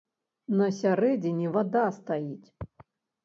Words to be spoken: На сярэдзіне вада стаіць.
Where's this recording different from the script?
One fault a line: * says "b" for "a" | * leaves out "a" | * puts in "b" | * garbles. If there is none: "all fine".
all fine